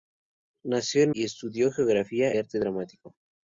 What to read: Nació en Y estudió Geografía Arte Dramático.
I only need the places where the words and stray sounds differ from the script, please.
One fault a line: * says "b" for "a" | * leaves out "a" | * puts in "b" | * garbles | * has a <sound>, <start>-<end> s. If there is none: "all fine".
all fine